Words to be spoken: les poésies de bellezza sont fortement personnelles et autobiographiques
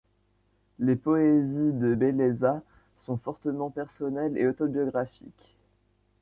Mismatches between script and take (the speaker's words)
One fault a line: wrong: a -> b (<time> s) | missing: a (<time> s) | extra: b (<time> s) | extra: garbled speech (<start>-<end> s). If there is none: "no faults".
no faults